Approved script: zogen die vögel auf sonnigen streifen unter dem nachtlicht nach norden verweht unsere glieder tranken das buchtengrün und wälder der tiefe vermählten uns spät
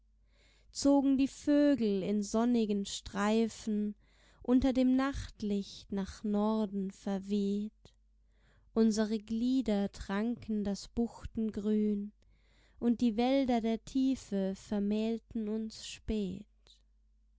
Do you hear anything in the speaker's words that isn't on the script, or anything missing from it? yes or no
yes